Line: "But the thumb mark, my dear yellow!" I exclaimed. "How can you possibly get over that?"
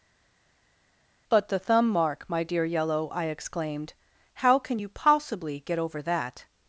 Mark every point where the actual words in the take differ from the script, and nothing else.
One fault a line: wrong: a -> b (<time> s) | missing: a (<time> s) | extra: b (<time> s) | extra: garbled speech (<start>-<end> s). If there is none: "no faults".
no faults